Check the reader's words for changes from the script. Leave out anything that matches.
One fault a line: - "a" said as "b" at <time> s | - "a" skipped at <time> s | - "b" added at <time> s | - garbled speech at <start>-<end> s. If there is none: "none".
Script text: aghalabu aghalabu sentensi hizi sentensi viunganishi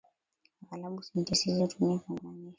- "aghalabu" skipped at 1.0 s
- "sentensi" said as "hutumia" at 1.6 s